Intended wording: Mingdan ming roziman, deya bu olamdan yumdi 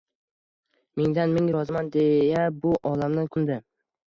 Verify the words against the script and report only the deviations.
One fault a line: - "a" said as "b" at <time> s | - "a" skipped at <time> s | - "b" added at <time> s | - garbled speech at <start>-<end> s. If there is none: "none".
none